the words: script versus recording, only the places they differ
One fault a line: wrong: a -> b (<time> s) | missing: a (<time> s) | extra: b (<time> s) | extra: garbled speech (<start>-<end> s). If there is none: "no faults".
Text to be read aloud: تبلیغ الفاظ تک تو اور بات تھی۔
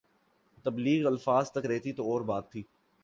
extra: رہتی (1.7 s)